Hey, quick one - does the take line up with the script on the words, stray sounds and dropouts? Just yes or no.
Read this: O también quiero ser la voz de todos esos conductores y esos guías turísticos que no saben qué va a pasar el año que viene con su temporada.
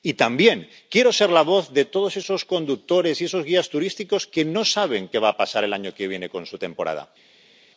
no